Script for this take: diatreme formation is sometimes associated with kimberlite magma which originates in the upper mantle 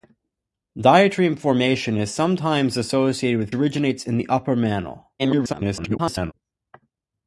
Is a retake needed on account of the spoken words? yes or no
yes